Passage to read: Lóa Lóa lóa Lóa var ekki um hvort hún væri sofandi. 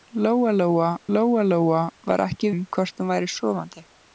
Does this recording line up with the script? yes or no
yes